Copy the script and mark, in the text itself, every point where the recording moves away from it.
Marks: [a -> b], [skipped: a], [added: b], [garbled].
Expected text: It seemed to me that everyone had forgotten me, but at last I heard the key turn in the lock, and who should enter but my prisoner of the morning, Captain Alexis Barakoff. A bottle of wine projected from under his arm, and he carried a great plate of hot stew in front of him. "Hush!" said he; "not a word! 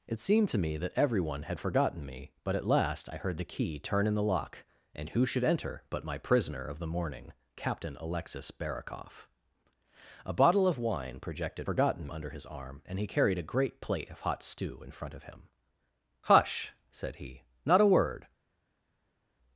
It seemed to me that everyone had forgotten me, but at last I heard the key turn in the lock, and who should enter but my prisoner of the morning, Captain Alexis Barakoff. A bottle of wine projected [from -> forgotten] under his arm, and he carried a great plate of hot stew in front of him. "Hush!" said he; "not a word!